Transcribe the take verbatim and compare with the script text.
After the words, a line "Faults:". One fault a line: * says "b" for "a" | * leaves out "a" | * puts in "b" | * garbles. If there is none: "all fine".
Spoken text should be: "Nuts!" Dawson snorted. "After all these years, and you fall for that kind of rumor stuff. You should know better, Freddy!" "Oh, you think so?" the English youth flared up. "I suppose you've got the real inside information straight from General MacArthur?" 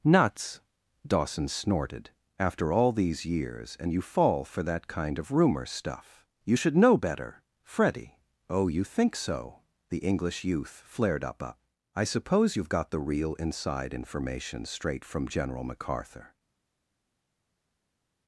"Nuts!" Dawson snorted. "After all these years, and you fall for that kind of rumor stuff. You should know better, Freddy!" "Oh, you think so?" the English youth flared up up. "I suppose you've got the real inside information straight from General MacArthur?"
Faults:
* puts in "up"